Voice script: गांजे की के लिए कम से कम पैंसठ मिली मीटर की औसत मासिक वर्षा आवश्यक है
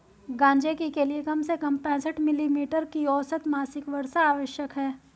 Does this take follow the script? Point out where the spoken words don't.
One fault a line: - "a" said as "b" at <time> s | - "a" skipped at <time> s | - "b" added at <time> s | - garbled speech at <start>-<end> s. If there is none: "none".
none